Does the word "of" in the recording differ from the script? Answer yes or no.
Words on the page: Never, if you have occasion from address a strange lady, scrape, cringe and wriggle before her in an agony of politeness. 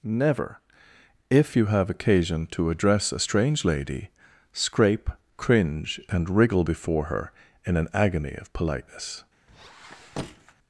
no